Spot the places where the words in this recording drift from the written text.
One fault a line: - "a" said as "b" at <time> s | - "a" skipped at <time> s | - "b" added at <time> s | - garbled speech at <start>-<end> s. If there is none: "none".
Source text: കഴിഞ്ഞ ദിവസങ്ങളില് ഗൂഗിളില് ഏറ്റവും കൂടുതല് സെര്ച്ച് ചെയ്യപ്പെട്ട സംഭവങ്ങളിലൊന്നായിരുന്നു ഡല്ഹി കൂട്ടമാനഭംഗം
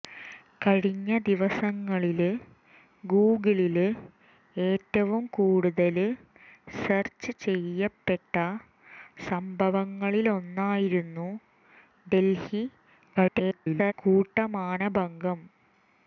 - garbled speech at 13.1-13.9 s